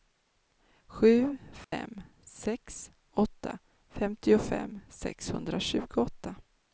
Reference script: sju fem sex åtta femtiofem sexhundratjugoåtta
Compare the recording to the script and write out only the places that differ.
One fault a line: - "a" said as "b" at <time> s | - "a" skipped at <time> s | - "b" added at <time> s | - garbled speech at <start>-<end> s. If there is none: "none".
none